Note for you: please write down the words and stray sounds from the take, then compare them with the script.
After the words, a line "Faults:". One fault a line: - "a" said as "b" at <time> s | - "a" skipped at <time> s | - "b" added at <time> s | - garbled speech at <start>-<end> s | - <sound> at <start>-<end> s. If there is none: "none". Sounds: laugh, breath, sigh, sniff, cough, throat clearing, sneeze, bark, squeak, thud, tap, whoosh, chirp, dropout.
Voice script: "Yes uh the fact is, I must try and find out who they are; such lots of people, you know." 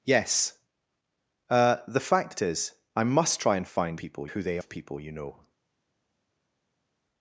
"Yes uh the fact is, I must try and find people who they of people, you know."
Faults:
- "out" said as "people" at 3.9 s
- "are such lots" skipped at 4.6 s